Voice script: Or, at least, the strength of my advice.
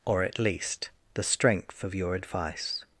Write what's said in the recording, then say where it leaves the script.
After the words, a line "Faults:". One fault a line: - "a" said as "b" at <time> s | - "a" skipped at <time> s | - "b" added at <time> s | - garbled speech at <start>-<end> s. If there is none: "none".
Or, at least, the strength of your advice.
Faults:
- "my" said as "your" at 1.9 s